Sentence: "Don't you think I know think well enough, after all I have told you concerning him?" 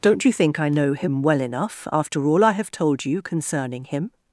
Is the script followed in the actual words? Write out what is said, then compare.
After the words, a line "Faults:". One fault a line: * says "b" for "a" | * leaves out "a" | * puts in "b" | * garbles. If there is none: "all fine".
"Don't you think I know him well enough, after all I have told you concerning him?"
Faults:
* says "him" for "think"